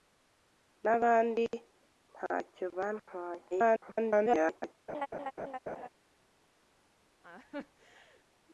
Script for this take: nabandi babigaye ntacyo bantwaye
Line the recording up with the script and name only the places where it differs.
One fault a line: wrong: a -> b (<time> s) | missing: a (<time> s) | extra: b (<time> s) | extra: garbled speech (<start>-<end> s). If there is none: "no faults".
missing: babigaye (1.4 s)
extra: garbled speech (3.5-4.7 s)